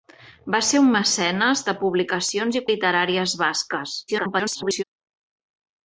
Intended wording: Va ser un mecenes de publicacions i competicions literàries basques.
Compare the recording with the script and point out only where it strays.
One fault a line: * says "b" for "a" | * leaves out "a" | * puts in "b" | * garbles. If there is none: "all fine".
* leaves out "competicions"
* garbles